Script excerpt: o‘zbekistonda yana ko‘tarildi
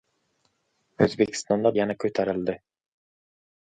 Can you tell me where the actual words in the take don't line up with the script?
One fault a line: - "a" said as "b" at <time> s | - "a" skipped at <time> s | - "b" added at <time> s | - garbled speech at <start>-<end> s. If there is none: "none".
none